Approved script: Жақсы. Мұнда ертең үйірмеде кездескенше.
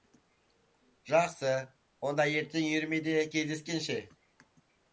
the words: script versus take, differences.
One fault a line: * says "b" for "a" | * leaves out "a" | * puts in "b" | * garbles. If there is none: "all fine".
* says "Онда" for "Мұнда"